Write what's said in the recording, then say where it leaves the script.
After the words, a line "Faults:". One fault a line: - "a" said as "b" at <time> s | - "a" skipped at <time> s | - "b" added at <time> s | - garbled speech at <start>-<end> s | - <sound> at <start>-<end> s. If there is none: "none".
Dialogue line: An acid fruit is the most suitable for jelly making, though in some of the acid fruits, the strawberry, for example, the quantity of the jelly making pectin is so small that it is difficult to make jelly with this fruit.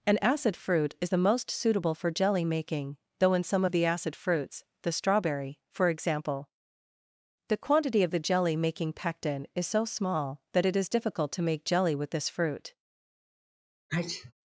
An acid fruit is the most suitable for jelly making, though in some of the acid fruits, the strawberry, for example, the quantity of the jelly making pectin is so small that it is difficult to make jelly with this fruit.
Faults:
- sneeze at 13.9-14.3 s